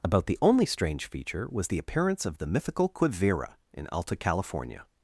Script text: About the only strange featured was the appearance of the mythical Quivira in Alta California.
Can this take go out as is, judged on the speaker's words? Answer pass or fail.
fail